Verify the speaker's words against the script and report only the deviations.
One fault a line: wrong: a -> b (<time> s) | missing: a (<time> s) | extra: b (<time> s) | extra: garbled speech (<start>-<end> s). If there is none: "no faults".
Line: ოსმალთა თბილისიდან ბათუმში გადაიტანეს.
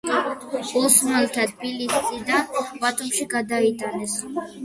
no faults